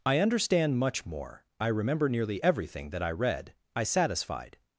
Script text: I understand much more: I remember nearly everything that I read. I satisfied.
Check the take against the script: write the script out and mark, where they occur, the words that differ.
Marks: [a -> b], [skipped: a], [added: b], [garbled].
I understand much more: I remember nearly everything that I read. I satisfied.